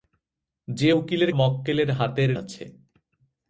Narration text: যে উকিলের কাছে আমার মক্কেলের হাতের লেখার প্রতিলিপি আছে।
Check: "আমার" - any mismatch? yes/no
yes